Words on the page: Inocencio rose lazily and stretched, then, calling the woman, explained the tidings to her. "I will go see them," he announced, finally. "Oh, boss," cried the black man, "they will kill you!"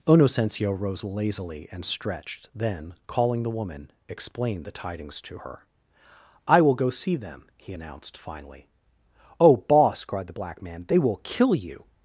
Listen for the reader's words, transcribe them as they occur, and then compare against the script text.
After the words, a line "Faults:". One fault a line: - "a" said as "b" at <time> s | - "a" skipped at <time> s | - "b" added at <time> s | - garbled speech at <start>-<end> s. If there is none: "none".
Inocencio rose lazily and stretched, then, calling the woman, explained the tidings to her. "I will go see them," he announced, finally. "Oh, boss," cried the black man, "they will kill you!"
Faults:
none